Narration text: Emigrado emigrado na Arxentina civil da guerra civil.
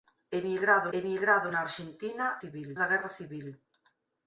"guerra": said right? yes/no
yes